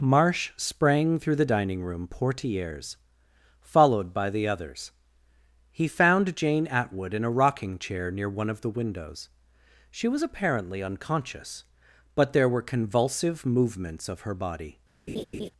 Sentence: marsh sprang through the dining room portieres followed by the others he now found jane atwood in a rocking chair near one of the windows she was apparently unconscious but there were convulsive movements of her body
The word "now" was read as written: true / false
false